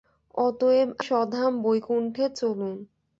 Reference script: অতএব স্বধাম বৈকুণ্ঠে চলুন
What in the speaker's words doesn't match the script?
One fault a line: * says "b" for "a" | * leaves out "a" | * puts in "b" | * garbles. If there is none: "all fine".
all fine